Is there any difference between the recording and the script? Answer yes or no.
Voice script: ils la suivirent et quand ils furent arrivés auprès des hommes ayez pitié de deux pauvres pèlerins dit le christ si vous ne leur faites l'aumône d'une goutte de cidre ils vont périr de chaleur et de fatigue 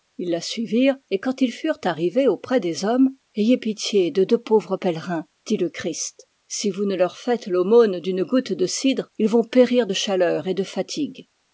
no